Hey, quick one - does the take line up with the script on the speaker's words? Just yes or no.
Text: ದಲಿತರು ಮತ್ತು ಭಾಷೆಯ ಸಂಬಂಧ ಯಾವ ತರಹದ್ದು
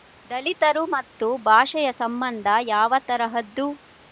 yes